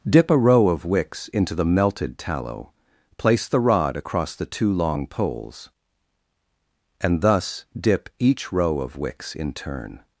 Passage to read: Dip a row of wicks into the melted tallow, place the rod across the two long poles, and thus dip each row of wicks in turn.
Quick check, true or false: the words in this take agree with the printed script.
true